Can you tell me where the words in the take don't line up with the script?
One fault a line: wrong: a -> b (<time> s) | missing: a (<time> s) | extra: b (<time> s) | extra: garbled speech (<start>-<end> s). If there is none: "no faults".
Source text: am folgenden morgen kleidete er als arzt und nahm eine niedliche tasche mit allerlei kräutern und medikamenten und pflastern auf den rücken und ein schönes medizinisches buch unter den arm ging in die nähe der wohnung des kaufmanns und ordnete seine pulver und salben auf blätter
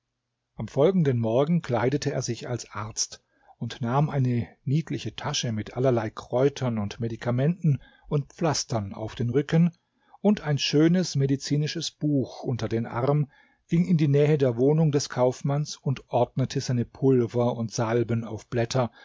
extra: sich (2.2 s)